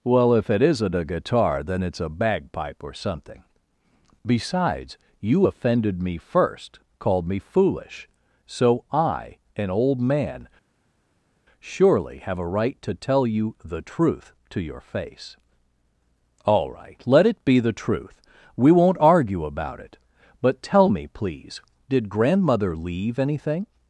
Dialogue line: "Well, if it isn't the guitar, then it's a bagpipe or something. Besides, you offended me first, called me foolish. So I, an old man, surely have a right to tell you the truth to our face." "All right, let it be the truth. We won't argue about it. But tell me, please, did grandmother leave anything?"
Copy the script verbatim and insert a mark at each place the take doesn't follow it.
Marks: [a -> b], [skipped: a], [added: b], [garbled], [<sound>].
"Well, if it isn't [the -> a] guitar, then it's a bagpipe or something. Besides, you offended me first, called me foolish. So I, an old man, surely have a right to tell you the truth to [our -> your] face." "All right, let it be the truth. We won't argue about it. But tell me, please, did grandmother leave anything?"